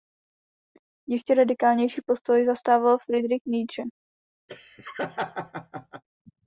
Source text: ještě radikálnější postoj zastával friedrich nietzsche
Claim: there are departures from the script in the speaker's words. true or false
false